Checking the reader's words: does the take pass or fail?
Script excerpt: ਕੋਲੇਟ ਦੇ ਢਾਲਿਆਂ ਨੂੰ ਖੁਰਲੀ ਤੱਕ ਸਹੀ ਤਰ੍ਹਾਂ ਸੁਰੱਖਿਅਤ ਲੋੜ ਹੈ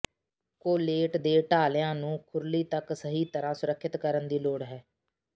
fail